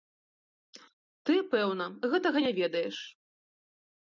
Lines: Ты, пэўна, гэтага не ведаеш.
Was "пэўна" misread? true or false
false